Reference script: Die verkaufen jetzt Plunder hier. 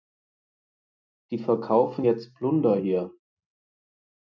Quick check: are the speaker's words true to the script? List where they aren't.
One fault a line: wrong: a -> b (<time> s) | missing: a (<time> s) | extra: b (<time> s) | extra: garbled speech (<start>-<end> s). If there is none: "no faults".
no faults